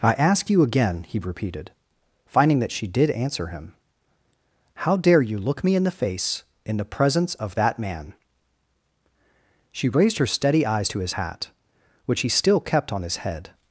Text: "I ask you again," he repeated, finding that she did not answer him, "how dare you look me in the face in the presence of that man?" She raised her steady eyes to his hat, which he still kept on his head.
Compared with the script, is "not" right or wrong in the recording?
wrong